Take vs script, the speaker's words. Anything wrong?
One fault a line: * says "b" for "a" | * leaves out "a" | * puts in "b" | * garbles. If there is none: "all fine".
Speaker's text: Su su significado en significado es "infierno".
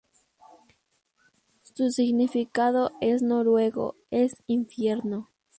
* leaves out "su"
* says "noruego" for "significado"